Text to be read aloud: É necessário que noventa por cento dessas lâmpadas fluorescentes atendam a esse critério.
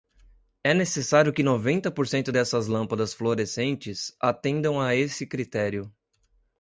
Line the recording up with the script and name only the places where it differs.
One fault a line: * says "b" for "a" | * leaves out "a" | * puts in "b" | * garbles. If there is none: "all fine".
all fine